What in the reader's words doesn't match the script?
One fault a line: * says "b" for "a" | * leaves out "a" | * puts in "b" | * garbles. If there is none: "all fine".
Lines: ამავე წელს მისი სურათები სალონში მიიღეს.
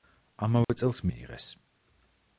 * leaves out "მისი სურათები სალონში"